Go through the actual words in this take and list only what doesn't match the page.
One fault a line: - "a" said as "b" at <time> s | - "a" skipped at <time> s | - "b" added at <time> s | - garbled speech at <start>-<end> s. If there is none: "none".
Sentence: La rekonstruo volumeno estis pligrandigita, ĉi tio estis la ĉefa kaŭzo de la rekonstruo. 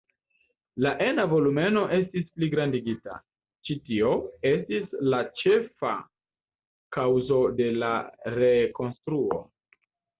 - "rekonstruo" said as "ena" at 1.1 s